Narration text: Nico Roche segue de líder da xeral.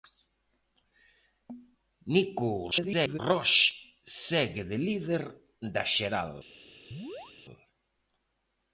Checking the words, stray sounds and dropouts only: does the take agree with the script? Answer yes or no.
no